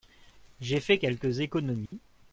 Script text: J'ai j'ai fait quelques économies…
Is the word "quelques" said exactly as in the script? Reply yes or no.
yes